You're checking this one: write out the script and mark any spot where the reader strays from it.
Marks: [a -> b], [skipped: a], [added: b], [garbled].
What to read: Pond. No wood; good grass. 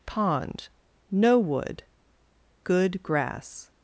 Pond. No wood; good grass.